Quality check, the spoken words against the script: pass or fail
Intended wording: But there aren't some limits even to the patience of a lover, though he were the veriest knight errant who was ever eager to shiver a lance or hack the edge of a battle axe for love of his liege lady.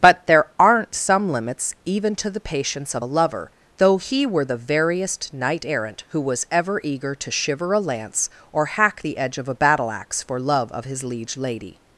pass